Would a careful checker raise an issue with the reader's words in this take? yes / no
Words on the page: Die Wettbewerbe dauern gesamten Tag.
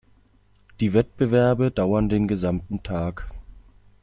yes